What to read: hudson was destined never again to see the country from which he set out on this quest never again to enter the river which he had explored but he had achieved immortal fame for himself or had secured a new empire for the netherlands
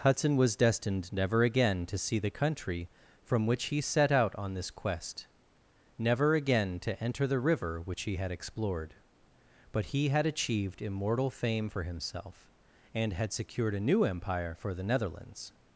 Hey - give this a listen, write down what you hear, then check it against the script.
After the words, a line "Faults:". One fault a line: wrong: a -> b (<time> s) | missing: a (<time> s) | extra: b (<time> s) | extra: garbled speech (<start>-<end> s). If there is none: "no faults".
hudson was destined never again to see the country from which he set out on this quest never again to enter the river which he had explored but he had achieved immortal fame for himself and had secured a new empire for the netherlands
Faults:
wrong: or -> and (12.9 s)